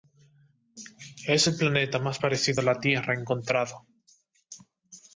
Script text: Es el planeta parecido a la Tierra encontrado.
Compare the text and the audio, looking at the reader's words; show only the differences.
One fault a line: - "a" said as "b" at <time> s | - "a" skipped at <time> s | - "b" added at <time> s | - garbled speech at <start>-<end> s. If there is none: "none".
- "más" added at 2.0 s